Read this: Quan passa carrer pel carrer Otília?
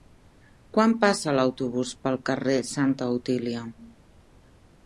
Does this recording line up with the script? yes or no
no